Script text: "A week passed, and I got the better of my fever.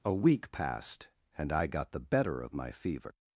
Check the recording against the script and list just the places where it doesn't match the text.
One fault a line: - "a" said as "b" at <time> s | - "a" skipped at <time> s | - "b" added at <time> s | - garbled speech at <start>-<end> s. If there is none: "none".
none